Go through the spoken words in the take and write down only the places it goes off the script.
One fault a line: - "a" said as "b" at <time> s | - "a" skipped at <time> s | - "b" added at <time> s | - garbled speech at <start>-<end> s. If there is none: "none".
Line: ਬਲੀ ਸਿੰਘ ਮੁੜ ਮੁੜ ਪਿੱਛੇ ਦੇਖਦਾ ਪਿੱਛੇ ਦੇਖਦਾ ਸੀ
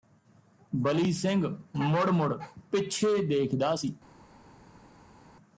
- "ਪਿੱਛੇ ਦੇਖਦਾ" skipped at 3.8 s